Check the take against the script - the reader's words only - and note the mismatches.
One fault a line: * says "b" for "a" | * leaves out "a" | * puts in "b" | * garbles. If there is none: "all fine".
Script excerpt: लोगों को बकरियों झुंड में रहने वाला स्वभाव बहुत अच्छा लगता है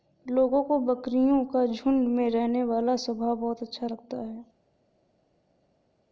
* puts in "का"